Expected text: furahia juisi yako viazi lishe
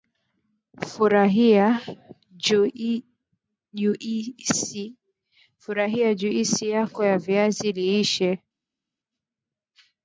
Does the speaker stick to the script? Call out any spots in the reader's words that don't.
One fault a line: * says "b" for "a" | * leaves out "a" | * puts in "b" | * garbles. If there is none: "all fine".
* puts in "ya"